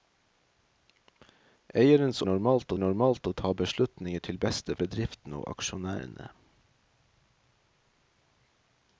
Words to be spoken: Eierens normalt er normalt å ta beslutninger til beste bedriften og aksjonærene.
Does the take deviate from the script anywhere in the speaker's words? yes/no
no